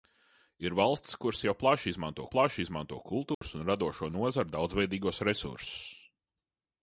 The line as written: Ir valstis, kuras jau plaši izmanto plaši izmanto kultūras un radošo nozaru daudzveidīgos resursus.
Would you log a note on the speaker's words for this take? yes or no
no